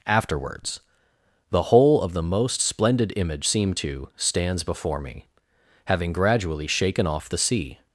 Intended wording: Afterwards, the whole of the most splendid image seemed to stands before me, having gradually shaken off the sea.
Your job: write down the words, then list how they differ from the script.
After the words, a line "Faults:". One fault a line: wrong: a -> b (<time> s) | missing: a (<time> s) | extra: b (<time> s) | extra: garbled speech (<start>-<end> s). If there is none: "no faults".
Afterwards, the whole of the most splendid image seemed to stands before me, having gradually shaken off the sea.
Faults:
no faults